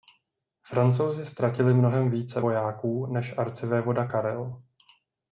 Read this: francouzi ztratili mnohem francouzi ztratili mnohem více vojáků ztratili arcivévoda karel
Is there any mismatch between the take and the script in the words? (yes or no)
yes